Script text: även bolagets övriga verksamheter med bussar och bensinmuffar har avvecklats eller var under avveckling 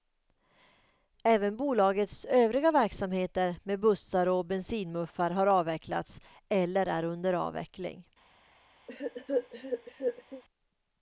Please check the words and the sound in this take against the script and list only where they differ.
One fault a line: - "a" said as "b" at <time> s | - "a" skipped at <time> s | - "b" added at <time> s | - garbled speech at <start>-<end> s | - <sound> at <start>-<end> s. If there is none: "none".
- "var" said as "är" at 6.8 s
- cough at 8.9-10.4 s